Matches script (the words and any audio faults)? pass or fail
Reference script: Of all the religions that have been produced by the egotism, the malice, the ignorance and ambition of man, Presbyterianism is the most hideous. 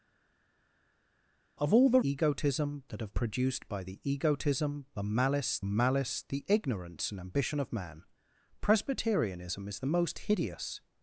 fail